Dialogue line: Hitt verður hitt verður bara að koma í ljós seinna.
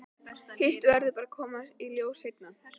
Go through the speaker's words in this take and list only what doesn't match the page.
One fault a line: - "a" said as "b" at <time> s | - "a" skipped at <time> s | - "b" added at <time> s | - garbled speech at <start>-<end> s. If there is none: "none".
- "hitt verður" skipped at 1.1 s